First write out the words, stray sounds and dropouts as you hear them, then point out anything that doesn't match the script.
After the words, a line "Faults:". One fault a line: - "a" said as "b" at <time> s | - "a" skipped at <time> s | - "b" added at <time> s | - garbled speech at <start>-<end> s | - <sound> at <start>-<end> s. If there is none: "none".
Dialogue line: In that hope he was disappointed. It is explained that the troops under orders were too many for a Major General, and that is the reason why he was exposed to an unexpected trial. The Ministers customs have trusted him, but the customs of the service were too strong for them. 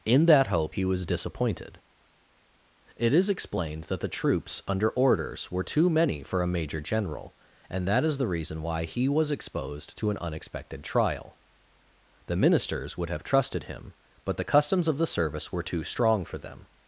In that hope he was disappointed. It is explained that the troops under orders were too many for a Major General, and that is the reason why he was exposed to an unexpected trial. The Ministers would have trusted him, but the customs of the service were too strong for them.
Faults:
- "customs" said as "would" at 13.0 s